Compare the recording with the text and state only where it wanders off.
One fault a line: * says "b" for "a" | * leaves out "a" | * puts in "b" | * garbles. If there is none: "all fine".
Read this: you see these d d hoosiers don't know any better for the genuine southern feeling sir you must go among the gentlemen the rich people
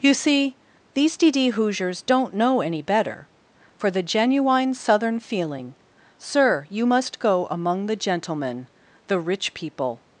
all fine